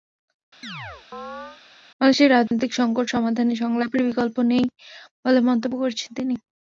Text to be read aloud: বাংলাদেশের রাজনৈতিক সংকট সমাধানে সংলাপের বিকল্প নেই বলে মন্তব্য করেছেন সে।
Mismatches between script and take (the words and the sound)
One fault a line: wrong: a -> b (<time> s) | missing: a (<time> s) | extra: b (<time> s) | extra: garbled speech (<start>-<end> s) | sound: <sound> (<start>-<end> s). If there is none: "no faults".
sound: chirp (0.6-1.6 s)
sound: dropout (2.5-2.5 s)
wrong: সে -> তিনি (6.2 s)